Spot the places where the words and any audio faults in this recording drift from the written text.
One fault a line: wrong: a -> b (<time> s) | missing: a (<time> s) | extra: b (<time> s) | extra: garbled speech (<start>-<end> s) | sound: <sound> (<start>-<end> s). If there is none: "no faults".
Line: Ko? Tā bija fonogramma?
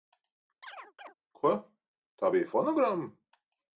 sound: chirp (0.6-1.1 s)